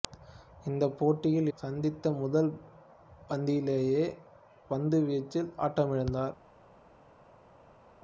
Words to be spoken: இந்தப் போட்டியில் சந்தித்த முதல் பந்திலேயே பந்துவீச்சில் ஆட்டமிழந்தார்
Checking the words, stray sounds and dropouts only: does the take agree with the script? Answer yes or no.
yes